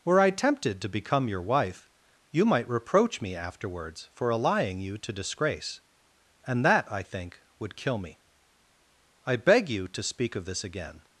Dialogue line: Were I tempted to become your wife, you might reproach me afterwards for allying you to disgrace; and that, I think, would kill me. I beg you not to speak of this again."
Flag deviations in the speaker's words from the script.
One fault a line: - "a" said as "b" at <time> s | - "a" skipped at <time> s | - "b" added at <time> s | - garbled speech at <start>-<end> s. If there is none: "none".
- "not" skipped at 9.9 s